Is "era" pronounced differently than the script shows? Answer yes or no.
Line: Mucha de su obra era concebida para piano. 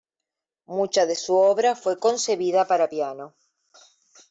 yes